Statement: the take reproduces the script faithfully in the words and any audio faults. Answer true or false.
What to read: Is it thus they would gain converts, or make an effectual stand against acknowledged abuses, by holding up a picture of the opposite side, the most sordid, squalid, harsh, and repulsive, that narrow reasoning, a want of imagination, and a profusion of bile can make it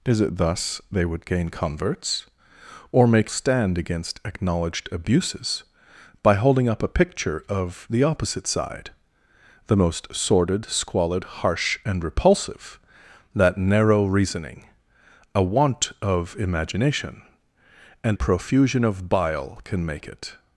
false